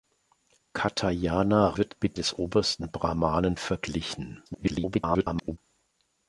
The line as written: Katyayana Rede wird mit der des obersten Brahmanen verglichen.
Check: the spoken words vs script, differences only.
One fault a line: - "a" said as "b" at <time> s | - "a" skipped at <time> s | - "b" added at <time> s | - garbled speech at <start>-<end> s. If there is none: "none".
- "Rede" skipped at 1.8 s
- "der" skipped at 2.2 s
- garbled speech at 4.5-5.6 s